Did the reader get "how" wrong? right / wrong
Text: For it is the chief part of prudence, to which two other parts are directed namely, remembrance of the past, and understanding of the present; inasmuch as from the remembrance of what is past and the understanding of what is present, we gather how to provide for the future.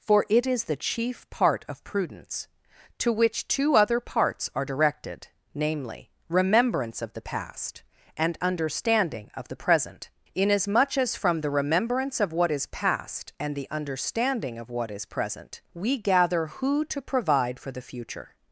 wrong